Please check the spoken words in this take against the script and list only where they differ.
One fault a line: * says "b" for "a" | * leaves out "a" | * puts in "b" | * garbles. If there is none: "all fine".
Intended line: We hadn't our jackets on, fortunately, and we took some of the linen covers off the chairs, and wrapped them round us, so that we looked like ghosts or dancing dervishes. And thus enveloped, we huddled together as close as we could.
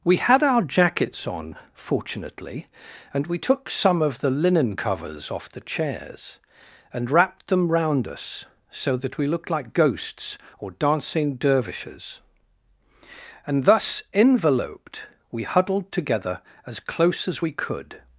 * says "had" for "hadn't"